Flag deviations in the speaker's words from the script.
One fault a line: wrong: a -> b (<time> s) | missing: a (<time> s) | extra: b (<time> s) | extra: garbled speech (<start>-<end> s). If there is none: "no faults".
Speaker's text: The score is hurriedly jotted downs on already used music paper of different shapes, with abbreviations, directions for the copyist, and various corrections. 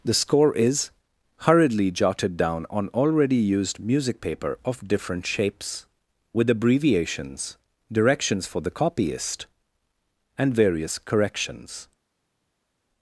wrong: downs -> down (2.4 s)